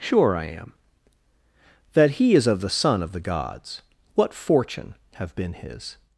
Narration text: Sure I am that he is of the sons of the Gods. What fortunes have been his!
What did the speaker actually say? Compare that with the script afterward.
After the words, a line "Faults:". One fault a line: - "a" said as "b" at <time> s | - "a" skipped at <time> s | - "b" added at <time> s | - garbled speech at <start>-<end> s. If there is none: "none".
Sure I am that he is of the son of the Gods. What fortune have been his!
Faults:
- "sons" said as "son" at 2.7 s
- "fortunes" said as "fortune" at 4.3 s